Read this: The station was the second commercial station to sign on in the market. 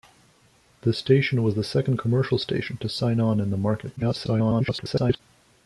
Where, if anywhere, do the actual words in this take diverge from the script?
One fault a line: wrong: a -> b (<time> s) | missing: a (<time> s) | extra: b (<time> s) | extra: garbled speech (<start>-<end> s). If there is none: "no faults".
extra: garbled speech (4.0-5.2 s)